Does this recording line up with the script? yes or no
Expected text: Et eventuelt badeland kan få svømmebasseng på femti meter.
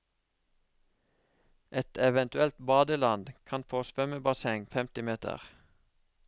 no